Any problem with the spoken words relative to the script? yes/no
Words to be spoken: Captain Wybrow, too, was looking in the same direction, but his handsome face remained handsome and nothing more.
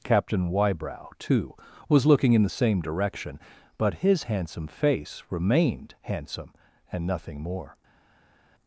no